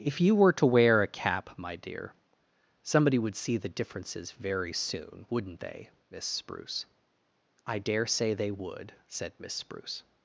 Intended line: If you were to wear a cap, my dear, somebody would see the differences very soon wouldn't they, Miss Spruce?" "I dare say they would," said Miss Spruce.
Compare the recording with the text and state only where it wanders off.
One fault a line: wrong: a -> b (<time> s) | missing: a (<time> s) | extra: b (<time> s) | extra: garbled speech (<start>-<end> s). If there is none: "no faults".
no faults